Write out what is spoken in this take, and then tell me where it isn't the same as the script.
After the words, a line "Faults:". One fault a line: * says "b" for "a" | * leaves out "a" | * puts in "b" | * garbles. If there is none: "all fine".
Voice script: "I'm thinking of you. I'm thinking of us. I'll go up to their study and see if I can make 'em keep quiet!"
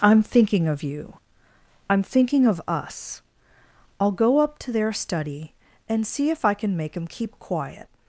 "I'm thinking of you. I'm thinking of us. I'll go up to their study and see if I can make 'em keep quiet!"
Faults:
all fine